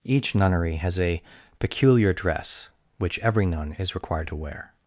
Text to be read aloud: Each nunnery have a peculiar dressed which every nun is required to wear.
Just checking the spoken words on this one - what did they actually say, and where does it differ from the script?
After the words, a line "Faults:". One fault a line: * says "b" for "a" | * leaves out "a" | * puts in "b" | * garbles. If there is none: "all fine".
Each nunnery has a peculiar dress which every nun is required to wear.
Faults:
* says "has" for "have"
* says "dress" for "dressed"